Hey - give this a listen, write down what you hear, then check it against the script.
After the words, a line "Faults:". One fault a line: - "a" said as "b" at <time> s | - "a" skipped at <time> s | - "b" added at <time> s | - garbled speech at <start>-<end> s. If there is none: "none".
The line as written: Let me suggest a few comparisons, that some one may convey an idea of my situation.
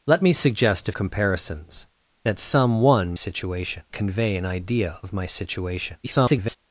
Let me suggest a comparisons, that some one situation convey an idea of my situation. [garbled]
Faults:
- "few" skipped at 0.9 s
- "may" said as "situation" at 3.1 s
- garbled speech at 6.0-6.6 s